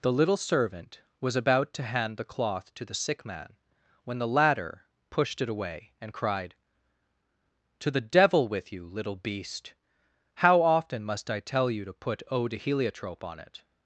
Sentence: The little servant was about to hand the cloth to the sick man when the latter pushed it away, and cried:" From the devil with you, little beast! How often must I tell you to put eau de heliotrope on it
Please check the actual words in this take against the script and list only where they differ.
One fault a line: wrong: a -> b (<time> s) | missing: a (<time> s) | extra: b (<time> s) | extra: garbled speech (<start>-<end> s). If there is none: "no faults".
wrong: From -> To (7.8 s)